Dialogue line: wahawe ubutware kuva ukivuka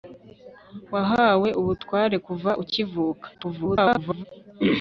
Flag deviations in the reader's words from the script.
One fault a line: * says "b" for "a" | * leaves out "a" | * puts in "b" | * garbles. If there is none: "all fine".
* garbles